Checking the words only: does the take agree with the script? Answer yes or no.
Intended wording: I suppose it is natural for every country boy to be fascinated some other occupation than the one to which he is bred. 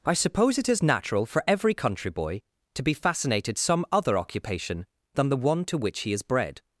yes